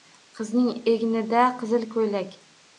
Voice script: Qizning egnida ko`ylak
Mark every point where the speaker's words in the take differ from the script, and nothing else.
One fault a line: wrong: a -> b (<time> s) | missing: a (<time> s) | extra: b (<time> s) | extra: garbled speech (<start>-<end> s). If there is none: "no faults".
extra: qizil (1.6 s)